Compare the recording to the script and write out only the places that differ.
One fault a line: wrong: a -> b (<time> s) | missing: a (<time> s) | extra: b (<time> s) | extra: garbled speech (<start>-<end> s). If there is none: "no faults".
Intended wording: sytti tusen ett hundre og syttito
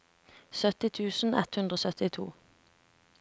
no faults